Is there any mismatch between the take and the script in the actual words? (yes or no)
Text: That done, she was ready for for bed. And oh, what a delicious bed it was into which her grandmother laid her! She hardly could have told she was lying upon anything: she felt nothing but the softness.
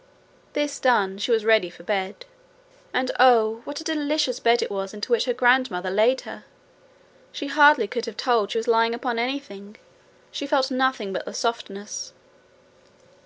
yes